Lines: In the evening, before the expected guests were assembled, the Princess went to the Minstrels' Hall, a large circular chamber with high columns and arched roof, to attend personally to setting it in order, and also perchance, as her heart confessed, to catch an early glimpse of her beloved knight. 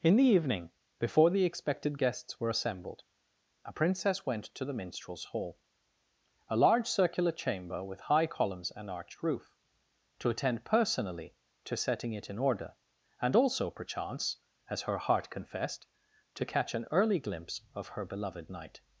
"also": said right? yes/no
yes